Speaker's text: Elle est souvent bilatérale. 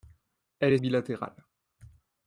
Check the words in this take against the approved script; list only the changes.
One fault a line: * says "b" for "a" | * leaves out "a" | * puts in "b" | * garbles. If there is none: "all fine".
* leaves out "souvent"